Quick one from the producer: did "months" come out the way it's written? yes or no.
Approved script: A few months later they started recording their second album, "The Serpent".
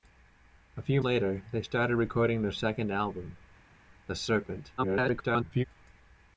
no